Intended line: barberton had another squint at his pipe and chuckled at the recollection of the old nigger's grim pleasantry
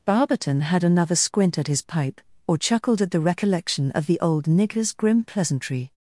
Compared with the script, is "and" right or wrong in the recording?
wrong